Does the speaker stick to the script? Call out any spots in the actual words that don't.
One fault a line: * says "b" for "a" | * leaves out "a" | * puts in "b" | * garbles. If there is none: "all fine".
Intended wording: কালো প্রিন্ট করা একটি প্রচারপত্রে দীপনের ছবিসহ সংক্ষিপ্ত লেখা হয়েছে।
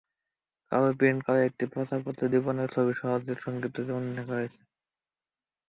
* puts in "জীবনী"